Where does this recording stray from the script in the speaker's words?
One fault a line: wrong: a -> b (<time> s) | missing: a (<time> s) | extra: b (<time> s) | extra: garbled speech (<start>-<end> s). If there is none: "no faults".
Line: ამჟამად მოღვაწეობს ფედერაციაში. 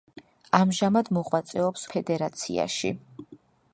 no faults